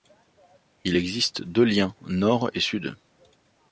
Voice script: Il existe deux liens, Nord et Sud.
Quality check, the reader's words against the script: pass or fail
pass